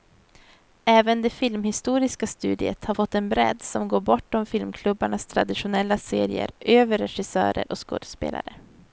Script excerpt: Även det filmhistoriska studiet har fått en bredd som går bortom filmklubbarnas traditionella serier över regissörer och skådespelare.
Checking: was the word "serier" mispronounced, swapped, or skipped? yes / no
no